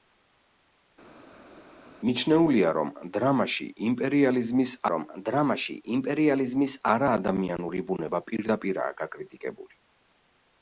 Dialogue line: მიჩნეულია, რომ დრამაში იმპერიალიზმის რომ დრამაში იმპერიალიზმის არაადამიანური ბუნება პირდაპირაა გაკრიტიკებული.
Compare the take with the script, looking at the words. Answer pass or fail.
pass